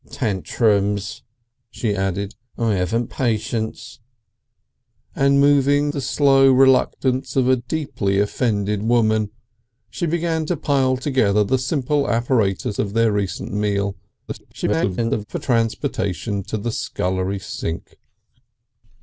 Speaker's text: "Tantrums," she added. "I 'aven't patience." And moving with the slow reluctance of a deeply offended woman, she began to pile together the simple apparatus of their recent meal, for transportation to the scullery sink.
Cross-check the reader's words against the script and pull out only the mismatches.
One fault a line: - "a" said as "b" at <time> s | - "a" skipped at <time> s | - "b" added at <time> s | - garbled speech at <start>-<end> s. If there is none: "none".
- "with" skipped at 5.9 s
- garbled speech at 14.3-15.3 s